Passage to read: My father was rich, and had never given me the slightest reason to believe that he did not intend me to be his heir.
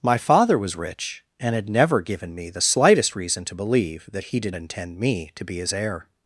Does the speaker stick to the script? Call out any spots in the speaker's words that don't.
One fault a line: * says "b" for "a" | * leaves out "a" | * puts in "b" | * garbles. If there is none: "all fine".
* leaves out "not"